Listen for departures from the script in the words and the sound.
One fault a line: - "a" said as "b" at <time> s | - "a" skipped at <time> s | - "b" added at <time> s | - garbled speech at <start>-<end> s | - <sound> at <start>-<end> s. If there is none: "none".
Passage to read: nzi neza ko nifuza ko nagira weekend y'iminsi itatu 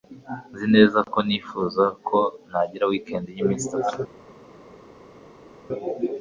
none